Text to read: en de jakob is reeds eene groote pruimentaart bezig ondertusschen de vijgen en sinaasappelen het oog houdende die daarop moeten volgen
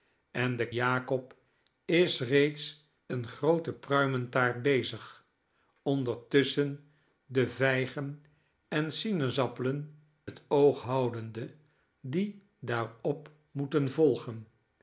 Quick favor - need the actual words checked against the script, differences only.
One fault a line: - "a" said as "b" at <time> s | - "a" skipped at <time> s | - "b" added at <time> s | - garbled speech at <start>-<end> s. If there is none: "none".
none